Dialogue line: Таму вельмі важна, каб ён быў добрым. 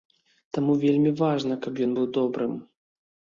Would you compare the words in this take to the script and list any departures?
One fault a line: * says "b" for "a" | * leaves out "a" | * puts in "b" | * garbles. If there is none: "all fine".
all fine